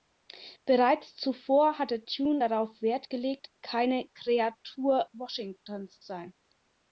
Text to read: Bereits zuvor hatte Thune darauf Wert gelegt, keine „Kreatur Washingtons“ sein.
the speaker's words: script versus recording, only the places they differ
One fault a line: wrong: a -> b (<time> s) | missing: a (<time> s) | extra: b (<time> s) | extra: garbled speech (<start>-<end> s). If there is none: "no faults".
no faults